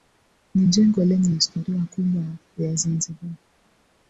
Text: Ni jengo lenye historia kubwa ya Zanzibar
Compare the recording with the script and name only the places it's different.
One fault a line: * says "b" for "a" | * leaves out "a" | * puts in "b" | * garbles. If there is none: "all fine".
all fine